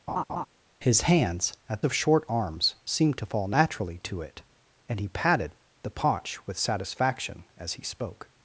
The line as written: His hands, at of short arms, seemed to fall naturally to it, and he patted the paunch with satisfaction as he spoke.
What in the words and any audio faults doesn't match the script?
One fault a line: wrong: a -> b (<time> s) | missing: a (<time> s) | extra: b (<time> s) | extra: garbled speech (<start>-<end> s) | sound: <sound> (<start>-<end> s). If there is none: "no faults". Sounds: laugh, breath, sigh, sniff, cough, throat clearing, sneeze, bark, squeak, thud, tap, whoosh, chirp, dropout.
sound: laugh (0.1-0.5 s)